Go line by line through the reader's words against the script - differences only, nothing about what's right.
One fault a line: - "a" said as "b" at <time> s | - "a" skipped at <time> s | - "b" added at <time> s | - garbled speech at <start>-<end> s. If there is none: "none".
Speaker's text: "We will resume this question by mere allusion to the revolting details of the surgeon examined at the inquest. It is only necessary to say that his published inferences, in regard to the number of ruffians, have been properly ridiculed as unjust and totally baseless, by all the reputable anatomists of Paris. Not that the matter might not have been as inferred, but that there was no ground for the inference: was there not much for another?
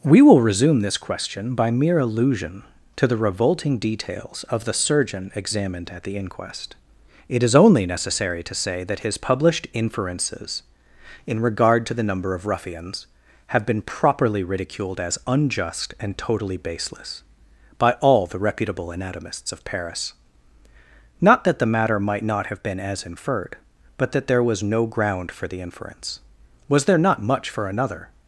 none